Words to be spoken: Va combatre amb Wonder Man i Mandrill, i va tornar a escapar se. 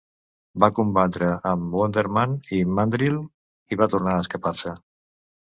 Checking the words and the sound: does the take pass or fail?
pass